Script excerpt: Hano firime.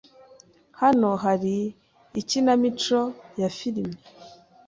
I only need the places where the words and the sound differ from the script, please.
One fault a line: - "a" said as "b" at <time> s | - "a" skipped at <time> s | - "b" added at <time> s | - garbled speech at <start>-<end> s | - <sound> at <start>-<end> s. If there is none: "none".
- "hari ikinamico ya" added at 1.2 s